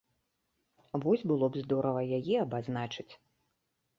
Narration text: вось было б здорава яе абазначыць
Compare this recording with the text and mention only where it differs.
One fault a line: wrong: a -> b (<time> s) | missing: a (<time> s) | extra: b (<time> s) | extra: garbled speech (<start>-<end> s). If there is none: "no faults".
no faults